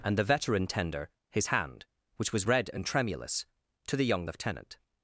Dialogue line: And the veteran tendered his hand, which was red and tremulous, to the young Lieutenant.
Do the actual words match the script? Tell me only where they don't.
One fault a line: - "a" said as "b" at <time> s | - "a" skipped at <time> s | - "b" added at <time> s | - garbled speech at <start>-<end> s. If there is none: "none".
- "tendered" said as "tender" at 0.7 s